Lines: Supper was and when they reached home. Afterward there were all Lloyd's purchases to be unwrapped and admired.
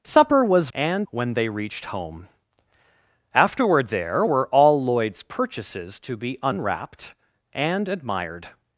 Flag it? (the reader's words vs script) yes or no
no